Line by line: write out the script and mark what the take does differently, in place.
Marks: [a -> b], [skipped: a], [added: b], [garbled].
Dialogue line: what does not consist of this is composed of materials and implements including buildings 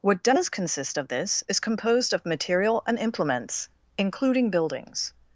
what does [skipped: not] consist of this is composed of [materials -> material] and implements including buildings